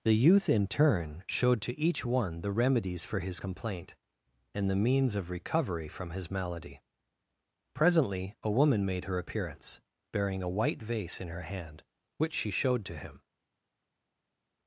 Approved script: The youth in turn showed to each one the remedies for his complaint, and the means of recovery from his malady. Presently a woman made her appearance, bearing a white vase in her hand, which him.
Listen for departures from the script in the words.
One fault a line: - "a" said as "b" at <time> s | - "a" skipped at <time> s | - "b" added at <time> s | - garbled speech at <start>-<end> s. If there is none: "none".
- "she showed to" added at 12.3 s